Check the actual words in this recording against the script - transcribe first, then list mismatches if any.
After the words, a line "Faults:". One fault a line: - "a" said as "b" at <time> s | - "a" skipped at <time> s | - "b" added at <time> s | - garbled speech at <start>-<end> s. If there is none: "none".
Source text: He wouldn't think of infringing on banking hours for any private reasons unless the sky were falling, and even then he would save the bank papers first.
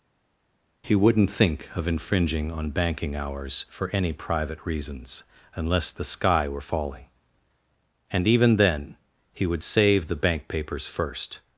He wouldn't think of infringing on banking hours for any private reasons unless the sky were falling, and even then he would save the bank papers first.
Faults:
none